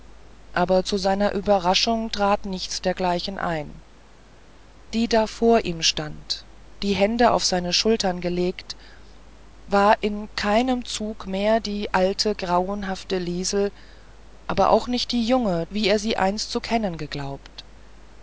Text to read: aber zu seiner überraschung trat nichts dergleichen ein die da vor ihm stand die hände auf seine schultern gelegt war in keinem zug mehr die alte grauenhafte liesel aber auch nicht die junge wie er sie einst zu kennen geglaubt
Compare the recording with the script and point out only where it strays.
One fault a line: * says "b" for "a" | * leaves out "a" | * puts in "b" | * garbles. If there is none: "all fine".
all fine